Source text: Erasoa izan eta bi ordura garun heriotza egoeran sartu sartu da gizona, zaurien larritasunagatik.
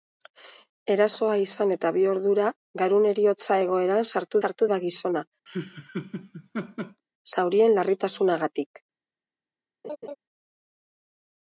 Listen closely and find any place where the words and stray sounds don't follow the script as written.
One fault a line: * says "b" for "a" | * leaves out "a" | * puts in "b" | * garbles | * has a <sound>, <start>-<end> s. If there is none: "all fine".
* has a laugh, 5.5-7.0 s
* has a laugh, 9.8-10.2 s